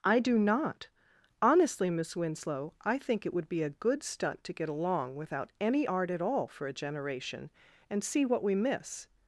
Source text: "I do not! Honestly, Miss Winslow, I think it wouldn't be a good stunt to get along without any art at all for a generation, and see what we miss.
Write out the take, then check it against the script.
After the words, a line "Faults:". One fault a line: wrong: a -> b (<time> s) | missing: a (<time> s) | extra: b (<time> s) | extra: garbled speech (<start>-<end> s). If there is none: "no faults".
"I do not! Honestly, Miss Winslow, I think it would be a good stunt to get along without any art at all for a generation, and see what we miss.
Faults:
wrong: wouldn't -> would (3.4 s)